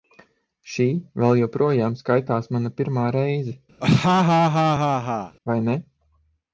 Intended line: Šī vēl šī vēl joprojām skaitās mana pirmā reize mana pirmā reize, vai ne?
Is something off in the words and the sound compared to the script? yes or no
yes